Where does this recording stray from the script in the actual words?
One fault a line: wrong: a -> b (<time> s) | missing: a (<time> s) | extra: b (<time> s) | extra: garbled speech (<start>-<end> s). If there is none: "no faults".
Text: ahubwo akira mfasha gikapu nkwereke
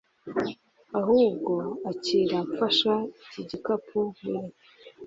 extra: iki (3.2 s)